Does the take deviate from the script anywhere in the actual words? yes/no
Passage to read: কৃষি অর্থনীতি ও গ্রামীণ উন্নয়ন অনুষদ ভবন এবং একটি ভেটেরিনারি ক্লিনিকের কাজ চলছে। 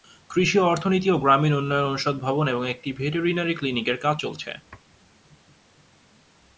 no